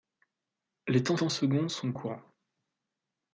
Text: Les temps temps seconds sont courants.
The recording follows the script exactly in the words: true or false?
true